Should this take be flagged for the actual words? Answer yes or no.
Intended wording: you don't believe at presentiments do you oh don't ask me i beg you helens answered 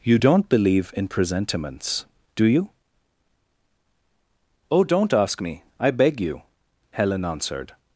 yes